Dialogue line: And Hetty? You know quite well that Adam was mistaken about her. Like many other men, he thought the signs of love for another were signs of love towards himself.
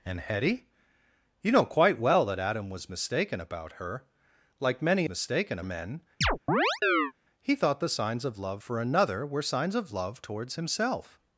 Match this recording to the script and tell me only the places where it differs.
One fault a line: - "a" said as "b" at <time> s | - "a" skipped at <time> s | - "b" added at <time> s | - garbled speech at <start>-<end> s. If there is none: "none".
- "other" said as "mistaken" at 5.1 s